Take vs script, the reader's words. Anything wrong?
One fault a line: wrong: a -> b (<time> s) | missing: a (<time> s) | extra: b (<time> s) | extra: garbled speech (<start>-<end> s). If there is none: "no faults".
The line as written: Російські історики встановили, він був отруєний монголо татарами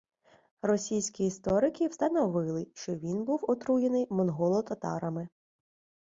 extra: що (2.8 s)